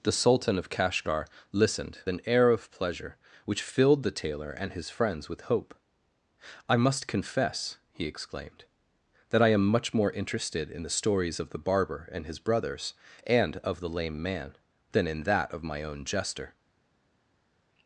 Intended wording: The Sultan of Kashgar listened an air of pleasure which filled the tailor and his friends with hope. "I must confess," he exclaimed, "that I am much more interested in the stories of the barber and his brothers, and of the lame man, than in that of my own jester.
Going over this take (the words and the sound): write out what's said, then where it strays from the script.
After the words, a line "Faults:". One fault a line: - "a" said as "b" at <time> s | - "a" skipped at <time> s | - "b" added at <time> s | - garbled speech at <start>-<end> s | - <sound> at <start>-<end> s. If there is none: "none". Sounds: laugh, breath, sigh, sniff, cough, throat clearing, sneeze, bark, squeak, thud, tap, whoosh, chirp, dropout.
The Sultan of Kashgar listened an air of pleasure which filled the tailor and his friends with hope. "I must confess," he exclaimed, "that I am much more interested in the stories of the barber and his brothers, and of the lame man, than in that of my own jester.
Faults:
none